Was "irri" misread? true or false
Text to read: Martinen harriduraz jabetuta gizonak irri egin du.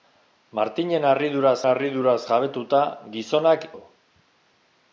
true